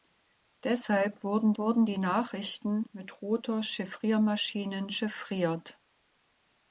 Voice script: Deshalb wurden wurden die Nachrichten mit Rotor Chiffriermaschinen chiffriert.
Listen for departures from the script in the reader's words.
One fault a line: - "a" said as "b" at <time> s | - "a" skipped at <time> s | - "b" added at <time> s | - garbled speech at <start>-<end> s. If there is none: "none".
none